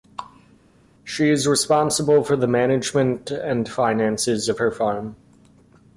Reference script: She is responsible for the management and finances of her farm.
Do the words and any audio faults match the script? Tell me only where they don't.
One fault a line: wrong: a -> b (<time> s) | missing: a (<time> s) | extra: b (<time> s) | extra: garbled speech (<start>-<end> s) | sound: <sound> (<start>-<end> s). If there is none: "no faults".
no faults